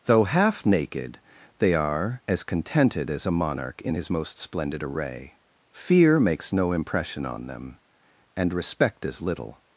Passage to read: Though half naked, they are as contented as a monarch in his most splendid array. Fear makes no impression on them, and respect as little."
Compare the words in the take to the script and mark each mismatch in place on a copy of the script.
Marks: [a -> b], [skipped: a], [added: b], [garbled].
Though half naked, they are as contented as a monarch in his most splendid array. Fear makes no impression on them, and respect as little."